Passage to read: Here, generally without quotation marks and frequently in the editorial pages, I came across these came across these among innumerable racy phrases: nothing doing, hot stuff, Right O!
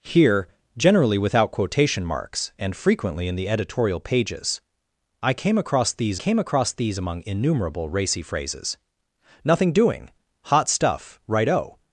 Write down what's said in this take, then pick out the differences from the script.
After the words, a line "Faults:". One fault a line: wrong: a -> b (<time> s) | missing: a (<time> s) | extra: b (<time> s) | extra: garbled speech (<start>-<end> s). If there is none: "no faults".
Here, generally without quotation marks and frequently in the editorial pages, I came across these came across these among innumerable racy phrases: nothing doing, hot stuff, Right O!
Faults:
no faults